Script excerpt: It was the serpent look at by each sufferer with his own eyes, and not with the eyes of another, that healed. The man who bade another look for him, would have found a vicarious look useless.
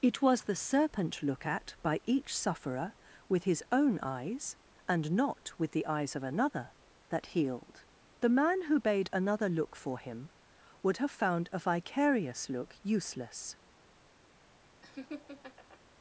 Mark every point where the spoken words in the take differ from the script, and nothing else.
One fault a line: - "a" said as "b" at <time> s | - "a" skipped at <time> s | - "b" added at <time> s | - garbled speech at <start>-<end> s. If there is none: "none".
none